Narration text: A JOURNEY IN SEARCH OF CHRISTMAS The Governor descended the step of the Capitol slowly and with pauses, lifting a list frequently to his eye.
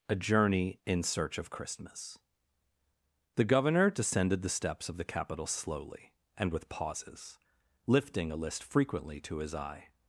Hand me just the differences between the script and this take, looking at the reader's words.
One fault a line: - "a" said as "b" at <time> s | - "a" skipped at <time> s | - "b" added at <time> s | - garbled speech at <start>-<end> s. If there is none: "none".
- "step" said as "steps" at 4.5 s